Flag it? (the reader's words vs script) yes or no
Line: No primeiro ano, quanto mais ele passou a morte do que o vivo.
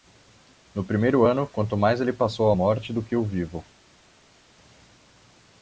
no